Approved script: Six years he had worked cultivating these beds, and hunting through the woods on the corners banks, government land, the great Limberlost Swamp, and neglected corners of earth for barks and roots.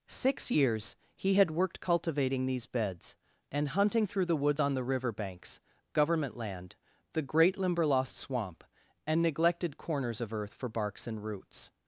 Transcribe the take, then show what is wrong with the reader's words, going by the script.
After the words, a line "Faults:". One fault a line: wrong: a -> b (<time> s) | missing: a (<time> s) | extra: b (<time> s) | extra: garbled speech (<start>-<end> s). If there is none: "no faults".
Six years he had worked cultivating these beds, and hunting through the woods on the river banks, government land, the great Limberlost Swamp, and neglected corners of earth for barks and roots.
Faults:
wrong: corners -> river (4.8 s)